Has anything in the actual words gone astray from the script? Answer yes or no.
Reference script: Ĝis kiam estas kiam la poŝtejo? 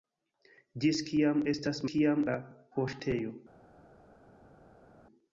no